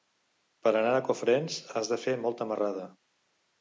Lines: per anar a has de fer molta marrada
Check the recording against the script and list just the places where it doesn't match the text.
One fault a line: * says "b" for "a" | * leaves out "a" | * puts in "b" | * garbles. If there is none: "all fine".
* puts in "cofrents"